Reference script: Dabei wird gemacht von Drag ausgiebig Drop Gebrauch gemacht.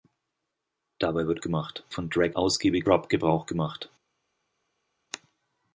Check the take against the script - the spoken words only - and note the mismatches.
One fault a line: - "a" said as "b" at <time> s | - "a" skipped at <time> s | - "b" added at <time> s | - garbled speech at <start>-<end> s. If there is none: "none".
none